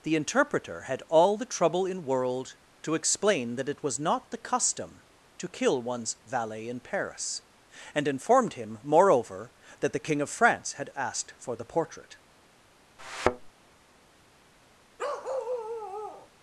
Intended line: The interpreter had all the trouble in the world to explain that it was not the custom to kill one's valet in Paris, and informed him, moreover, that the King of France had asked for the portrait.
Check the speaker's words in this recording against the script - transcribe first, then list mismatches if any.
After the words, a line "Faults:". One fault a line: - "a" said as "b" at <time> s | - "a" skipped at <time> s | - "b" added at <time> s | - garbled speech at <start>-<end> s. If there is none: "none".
The interpreter had all the trouble in world to explain that it was not the custom to kill one's valet in Paris, and informed him, moreover, that the King of France had asked for the portrait.
Faults:
- "the" skipped at 2.0 s